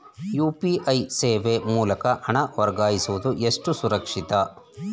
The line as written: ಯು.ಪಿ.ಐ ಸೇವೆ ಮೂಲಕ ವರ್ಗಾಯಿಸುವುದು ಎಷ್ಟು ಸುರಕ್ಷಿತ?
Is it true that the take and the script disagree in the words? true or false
true